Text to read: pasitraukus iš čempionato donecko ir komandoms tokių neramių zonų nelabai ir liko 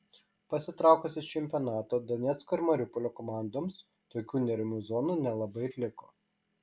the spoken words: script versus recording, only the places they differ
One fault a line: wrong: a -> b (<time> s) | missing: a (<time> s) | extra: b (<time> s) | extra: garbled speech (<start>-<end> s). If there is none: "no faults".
extra: mariupolio (2.7 s)